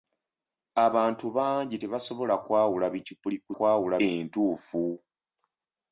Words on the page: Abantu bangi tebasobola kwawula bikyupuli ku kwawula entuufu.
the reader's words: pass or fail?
pass